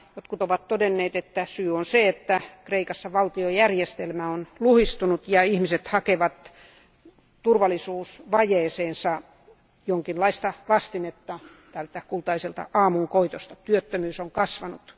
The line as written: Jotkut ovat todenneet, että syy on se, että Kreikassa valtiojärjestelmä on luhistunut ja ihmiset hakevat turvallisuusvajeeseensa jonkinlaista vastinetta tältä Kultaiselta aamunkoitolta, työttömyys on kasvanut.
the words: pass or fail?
pass